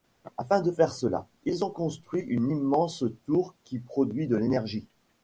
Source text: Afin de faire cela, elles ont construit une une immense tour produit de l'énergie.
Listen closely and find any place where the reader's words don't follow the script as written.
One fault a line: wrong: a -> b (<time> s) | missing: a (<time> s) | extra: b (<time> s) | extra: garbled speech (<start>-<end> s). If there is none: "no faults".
wrong: elles -> ils (1.4 s)
missing: une (2.5 s)
extra: qui (3.6 s)